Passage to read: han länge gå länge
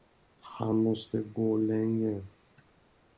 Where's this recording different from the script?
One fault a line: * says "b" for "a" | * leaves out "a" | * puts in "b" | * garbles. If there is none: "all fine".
* says "måste" for "länge"